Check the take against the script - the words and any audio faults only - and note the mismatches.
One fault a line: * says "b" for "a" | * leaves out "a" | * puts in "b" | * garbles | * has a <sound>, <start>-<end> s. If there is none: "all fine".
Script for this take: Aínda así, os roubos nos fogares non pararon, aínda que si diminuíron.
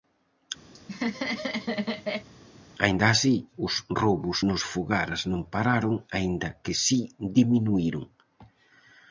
* has a laugh, 0.7-2.3 s